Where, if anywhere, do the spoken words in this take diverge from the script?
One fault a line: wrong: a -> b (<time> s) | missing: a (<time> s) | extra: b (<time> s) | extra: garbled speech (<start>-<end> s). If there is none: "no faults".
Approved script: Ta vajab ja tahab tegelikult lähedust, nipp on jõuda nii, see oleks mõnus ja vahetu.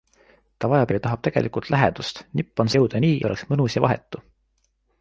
no faults